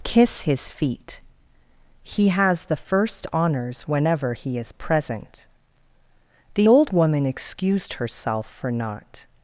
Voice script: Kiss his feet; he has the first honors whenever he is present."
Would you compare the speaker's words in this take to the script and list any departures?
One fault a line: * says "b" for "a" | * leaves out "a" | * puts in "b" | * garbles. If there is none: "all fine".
* puts in "The old woman excused herself for not"